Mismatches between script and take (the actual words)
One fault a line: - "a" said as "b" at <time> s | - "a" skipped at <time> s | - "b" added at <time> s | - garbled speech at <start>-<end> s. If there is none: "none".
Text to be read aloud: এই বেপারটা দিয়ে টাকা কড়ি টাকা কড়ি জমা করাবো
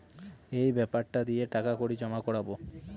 - "টাকা কড়ি" skipped at 1.9 s